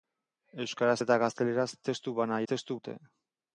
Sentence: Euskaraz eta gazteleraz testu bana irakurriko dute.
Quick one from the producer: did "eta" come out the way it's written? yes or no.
yes